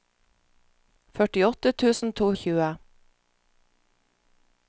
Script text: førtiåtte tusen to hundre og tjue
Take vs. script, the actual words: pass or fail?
fail